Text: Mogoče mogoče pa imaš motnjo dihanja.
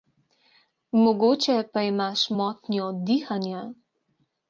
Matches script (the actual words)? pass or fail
fail